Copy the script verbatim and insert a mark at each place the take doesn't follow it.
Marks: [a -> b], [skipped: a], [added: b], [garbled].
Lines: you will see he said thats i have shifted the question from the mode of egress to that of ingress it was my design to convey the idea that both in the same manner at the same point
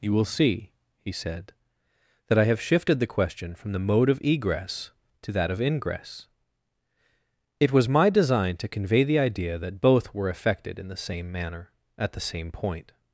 you will see he said [thats -> that] i have shifted the question from the mode of egress to that of ingress it was my design to convey the idea that both [added: were effected] in the same manner at the same point